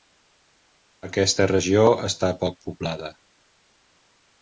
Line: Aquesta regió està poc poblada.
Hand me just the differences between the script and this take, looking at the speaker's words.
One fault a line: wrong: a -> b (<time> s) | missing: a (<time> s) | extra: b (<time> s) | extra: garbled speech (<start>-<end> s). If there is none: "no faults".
no faults